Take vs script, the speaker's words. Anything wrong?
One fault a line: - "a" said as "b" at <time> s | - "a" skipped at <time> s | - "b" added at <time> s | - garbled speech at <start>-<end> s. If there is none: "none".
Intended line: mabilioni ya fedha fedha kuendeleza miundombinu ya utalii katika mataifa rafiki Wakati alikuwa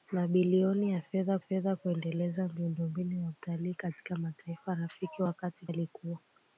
none